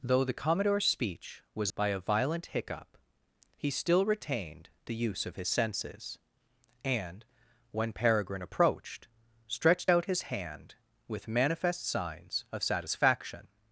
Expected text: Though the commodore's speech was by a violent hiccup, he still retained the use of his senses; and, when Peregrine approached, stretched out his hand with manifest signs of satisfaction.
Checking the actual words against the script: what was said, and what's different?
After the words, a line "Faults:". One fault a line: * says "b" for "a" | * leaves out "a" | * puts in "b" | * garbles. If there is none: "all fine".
Though the commodore's speech was by a violent hiccup, he still retained the use of his senses; and, when Peregrine approached, stretched out his hand with manifest signs of satisfaction.
Faults:
all fine